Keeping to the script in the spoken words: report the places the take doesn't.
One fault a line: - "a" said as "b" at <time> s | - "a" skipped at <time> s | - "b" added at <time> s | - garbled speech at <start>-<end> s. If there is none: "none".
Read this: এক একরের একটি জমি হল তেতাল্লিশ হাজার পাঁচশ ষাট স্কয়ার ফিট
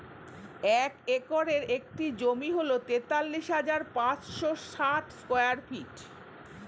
none